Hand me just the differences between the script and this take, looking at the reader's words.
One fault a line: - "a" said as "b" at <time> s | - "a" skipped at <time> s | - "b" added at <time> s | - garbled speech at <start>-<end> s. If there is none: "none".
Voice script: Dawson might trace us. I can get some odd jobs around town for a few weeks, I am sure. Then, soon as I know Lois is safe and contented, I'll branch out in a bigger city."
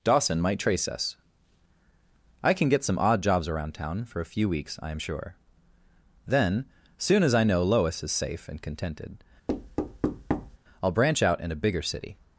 none